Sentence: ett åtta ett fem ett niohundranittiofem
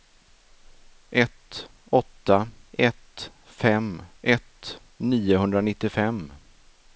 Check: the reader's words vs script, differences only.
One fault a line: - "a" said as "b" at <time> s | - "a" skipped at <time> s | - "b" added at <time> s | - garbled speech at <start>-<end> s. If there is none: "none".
none